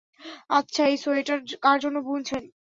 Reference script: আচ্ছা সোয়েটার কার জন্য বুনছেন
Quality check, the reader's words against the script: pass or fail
fail